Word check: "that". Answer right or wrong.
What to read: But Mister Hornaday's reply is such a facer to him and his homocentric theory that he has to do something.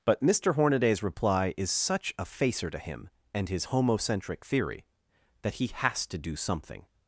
right